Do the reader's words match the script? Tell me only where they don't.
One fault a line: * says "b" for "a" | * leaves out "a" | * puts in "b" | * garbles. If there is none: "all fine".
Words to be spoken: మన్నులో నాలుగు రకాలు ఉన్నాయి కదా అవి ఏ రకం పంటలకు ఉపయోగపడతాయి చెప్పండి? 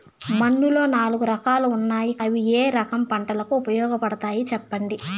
* leaves out "కదా"